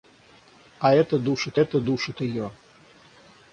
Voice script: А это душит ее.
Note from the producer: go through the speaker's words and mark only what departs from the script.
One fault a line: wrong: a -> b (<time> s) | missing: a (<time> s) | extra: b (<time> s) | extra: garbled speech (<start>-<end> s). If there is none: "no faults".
extra: это душит (1.6 s)